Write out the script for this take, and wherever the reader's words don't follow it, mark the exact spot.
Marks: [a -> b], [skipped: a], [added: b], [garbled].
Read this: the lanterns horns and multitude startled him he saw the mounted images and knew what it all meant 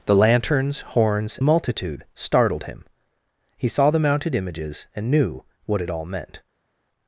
the lanterns horns [skipped: and] multitude startled him he saw the mounted images and knew what it all meant